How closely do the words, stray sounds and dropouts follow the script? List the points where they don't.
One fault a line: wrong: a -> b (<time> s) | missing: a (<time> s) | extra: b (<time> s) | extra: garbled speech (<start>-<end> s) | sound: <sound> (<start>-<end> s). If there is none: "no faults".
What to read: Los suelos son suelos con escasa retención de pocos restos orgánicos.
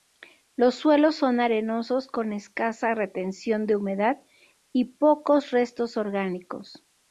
wrong: suelos -> arenosos (1.4 s)
extra: humedad y (3.8 s)